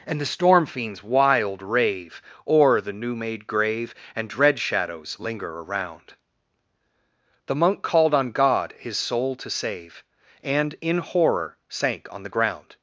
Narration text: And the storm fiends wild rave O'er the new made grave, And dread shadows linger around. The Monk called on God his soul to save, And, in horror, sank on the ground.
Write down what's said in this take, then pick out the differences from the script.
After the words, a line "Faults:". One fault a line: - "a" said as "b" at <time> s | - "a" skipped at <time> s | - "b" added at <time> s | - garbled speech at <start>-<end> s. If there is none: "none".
And the storm fiends wild rave O'er the new made grave, And dread shadows linger around. The Monk called on God his soul to save, And, in horror, sank on the ground.
Faults:
none